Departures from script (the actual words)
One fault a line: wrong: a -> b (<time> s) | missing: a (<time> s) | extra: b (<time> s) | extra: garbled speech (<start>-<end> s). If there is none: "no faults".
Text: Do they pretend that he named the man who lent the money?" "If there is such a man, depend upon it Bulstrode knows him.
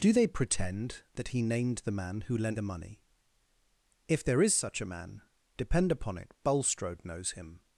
no faults